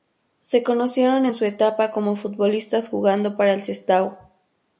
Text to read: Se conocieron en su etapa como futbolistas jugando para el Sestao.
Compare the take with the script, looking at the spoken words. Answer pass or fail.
pass